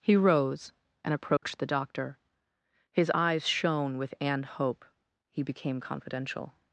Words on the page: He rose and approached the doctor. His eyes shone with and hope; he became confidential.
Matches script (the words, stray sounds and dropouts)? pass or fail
fail